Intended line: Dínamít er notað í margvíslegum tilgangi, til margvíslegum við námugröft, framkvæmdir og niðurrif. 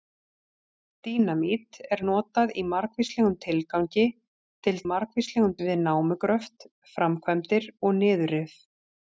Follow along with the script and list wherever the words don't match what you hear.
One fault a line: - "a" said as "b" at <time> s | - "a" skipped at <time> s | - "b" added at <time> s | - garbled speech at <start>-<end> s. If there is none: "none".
none